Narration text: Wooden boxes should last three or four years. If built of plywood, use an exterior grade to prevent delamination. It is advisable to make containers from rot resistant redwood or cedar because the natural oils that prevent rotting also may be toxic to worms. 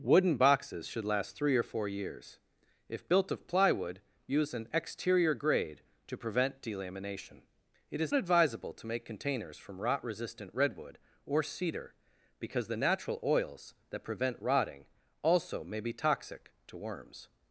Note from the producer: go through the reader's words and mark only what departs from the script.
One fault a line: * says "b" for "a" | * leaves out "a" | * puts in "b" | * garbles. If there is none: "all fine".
all fine